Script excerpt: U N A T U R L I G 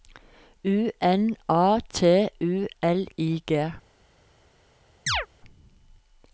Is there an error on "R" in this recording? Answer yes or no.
yes